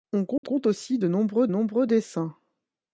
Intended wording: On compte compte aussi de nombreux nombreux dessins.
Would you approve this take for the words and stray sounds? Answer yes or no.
no